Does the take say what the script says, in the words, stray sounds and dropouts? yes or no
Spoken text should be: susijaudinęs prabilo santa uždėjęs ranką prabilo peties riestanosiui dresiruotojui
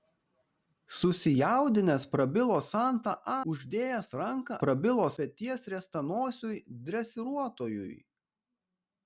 yes